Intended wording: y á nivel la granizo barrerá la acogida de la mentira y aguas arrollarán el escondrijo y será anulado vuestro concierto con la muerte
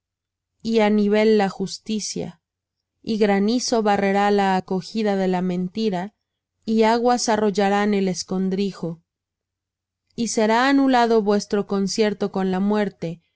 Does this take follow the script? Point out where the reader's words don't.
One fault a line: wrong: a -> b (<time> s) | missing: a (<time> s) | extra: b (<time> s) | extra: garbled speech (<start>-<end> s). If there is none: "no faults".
extra: justicia y (1.5 s)